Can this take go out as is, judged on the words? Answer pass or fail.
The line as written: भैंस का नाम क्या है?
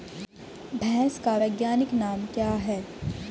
fail